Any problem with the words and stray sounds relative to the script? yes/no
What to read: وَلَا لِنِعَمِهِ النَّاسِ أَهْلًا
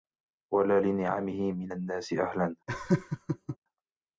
yes